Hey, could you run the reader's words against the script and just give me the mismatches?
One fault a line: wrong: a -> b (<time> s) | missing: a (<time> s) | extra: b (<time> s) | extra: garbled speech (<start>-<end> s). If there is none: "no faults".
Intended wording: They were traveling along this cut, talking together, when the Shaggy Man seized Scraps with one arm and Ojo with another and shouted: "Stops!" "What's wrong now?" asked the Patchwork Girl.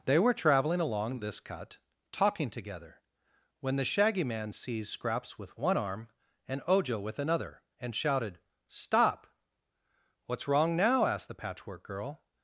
wrong: Stops -> Stop (8.7 s)